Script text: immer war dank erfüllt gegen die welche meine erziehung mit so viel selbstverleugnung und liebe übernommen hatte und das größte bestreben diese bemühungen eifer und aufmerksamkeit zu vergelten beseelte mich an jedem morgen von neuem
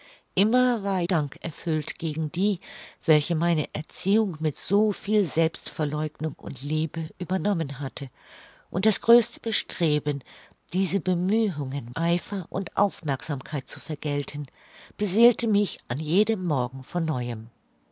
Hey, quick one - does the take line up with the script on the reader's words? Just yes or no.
yes